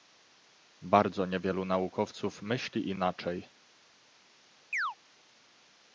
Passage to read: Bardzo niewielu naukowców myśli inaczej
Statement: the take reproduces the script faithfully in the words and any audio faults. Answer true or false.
false